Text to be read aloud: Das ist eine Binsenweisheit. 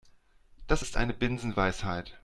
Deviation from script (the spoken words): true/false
false